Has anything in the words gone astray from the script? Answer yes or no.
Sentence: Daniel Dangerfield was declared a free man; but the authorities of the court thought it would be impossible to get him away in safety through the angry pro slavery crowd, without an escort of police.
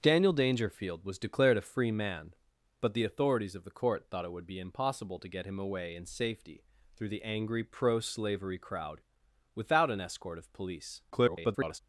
yes